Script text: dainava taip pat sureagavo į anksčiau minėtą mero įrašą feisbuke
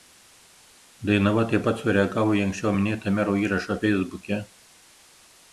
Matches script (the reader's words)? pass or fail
pass